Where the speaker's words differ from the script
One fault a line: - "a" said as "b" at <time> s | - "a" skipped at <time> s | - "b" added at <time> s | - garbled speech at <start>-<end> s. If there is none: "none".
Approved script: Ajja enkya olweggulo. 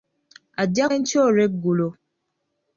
none